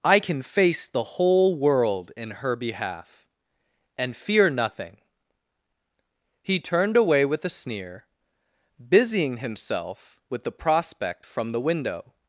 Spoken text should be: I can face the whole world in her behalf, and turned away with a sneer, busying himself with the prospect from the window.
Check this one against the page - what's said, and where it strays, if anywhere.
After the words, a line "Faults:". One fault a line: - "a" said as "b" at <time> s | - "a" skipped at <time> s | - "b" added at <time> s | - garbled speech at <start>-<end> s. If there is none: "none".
I can face the whole world in her behalf, and fear nothing." He turned away with a sneer, busying himself with the prospect from the window.
Faults:
- "fear nothing He" added at 4.1 s